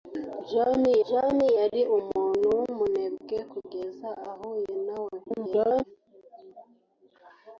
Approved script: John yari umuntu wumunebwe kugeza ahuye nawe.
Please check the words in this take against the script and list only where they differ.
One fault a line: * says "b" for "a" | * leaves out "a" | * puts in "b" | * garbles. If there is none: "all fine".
* puts in "john"
* garbles